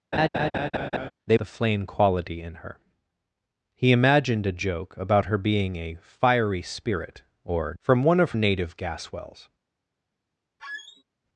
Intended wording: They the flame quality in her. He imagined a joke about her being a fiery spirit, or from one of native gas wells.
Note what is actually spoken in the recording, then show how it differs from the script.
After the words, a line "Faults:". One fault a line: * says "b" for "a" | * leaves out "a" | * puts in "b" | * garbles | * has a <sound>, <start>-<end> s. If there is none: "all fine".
They the flame quality in her. He imagined a joke about her being a fiery spirit, or from one of native gas wells.
Faults:
* has a laugh, 0.1-1.1 s
* has a squeak, 10.6-11.0 s